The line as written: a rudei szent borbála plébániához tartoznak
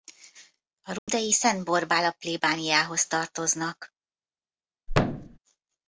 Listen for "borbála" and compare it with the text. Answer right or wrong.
right